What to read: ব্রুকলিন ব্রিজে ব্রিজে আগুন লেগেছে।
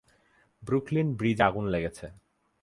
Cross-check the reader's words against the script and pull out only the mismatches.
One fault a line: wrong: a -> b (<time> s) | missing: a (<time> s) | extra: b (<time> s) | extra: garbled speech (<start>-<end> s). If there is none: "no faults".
missing: ব্রিজে (1.4 s)